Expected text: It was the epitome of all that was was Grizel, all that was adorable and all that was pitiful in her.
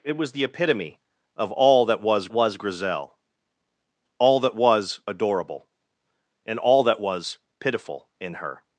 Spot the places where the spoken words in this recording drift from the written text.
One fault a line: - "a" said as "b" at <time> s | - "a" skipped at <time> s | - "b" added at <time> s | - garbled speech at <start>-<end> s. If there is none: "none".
none